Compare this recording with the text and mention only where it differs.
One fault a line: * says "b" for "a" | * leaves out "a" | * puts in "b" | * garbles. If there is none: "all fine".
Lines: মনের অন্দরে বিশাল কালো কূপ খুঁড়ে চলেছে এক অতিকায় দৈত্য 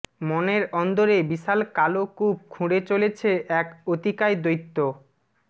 all fine